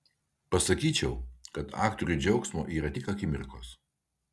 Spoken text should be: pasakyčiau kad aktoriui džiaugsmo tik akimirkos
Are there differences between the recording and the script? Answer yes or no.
yes